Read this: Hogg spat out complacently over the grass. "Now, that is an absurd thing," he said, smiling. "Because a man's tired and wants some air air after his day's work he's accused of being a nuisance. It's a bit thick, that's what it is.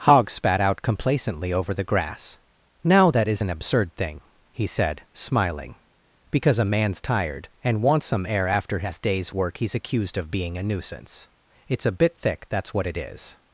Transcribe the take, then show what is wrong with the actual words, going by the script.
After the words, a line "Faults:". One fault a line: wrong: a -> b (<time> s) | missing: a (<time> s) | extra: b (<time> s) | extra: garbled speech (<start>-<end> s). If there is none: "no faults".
Hogg spat out complacently over the grass. "Now, that is an absurd thing," he said, smiling. "Because a man's tired and wants some air after his day's work he's accused of being a nuisance. It's a bit thick, that's what it is.
Faults:
missing: air (8.5 s)